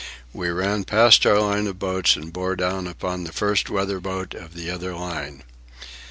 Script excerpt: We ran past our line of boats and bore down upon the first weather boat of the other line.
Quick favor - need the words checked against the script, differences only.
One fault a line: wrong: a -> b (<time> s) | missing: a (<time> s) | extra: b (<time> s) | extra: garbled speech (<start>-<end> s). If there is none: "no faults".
no faults